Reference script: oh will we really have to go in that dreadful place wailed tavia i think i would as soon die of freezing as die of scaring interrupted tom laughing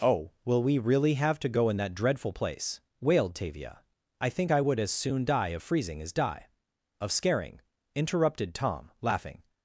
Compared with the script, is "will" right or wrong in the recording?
right